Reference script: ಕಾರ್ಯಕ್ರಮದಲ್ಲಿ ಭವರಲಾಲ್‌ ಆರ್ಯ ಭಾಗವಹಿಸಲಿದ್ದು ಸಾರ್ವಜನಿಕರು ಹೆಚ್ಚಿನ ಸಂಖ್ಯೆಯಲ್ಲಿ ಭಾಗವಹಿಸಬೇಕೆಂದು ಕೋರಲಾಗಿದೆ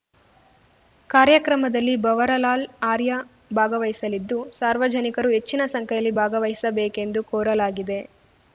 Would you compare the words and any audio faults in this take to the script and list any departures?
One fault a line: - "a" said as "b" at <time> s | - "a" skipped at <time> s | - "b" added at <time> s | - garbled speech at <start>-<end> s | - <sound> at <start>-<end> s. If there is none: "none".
none